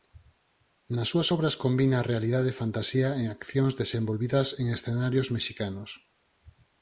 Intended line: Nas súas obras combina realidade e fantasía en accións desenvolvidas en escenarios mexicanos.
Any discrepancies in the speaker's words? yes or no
no